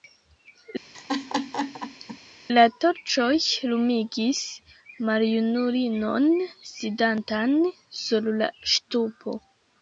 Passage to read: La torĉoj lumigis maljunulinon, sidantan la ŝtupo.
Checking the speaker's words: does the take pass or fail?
fail